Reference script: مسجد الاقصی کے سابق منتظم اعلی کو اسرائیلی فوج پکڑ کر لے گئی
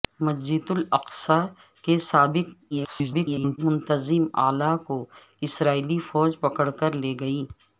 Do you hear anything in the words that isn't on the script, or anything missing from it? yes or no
yes